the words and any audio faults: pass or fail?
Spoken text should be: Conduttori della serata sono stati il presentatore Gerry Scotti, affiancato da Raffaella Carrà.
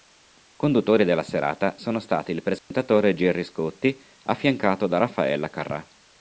fail